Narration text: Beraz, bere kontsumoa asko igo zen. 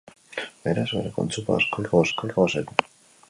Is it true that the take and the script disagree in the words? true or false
true